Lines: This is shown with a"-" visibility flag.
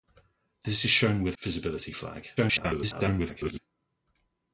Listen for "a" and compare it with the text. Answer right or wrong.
wrong